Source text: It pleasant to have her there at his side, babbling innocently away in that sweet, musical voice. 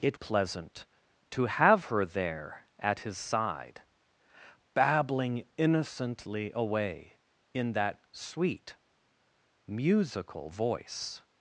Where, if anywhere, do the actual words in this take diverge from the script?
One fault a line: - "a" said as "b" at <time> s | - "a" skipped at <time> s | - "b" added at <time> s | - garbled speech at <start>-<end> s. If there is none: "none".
none